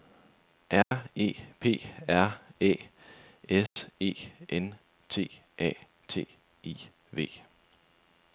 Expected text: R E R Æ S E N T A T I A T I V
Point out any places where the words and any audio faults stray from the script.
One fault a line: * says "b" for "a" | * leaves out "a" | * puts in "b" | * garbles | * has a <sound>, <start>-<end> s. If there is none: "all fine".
* has a dropout, 0.8-0.9 s
* puts in "P"
* has a dropout, 3.7-3.8 s
* leaves out "A T I"